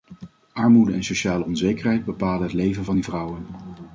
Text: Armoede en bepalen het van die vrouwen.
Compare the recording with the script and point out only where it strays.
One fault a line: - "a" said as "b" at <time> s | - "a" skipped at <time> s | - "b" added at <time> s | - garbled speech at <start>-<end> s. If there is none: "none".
- "sociale onzekerheid" added at 1.0 s
- "leven" added at 2.5 s